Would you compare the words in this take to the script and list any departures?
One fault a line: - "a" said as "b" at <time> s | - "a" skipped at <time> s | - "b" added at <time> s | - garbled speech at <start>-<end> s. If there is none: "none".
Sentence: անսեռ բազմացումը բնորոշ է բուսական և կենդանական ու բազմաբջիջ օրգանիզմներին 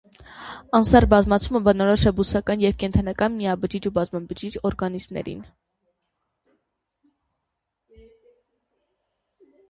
- "միաբջիջ" added at 3.4 s